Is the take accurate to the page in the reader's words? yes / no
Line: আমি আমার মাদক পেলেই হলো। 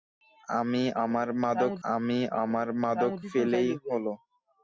no